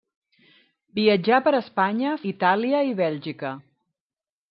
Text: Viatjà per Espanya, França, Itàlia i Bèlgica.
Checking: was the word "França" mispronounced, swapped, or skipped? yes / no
yes